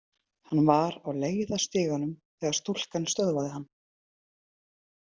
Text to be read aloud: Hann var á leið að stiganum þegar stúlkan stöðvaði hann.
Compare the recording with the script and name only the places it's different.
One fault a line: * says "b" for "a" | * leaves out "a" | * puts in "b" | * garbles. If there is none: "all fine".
all fine